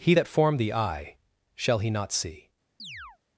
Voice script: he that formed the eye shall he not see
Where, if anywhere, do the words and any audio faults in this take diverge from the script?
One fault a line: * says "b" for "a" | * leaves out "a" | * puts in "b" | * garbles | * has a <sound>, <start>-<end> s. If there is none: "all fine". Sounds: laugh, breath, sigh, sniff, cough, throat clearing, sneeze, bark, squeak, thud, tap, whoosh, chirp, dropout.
* has a chirp, 2.8-3.2 s